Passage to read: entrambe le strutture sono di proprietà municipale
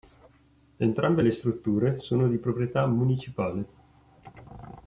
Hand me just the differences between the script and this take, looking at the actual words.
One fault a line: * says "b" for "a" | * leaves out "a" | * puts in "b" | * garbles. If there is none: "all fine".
all fine